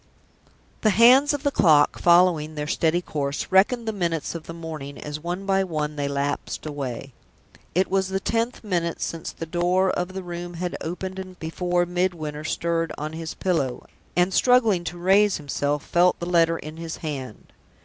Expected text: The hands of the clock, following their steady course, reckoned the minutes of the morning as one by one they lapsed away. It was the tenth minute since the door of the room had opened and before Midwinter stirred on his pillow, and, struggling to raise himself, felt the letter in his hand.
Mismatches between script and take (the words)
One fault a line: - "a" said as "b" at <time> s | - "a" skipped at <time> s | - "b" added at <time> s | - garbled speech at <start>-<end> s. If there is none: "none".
none